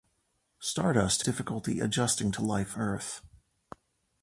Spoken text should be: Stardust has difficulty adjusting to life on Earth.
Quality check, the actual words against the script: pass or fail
fail